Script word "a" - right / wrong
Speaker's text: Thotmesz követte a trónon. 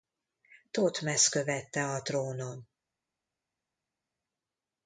right